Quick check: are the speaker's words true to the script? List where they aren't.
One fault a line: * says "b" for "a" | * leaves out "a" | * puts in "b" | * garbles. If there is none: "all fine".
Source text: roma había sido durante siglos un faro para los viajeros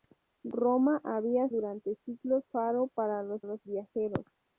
* leaves out "sido"
* leaves out "un"
* puts in "los"